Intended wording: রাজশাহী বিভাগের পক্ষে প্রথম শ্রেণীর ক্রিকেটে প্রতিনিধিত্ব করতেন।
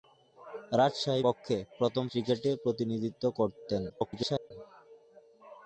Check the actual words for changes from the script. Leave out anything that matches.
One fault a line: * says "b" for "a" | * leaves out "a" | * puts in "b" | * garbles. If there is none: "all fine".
* leaves out "বিভাগের"
* leaves out "শ্রেণীর"
* garbles